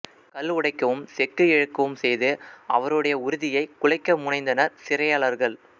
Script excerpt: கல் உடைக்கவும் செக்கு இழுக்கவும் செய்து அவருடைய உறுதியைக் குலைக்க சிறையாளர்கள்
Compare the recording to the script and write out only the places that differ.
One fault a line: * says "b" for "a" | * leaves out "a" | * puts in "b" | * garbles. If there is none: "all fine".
* puts in "முனைந்தனர்"